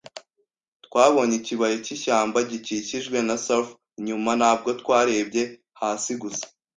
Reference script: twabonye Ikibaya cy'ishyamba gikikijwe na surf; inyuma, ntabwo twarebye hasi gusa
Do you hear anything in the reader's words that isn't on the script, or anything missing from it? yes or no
no